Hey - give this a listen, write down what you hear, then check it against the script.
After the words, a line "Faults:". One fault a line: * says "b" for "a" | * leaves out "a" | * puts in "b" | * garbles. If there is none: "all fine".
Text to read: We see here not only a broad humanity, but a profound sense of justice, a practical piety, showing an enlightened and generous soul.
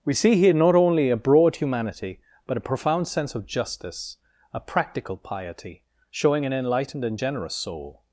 We see here not only a broad humanity, but a profound sense of justice, a practical piety, showing an enlightened and generous soul.
Faults:
all fine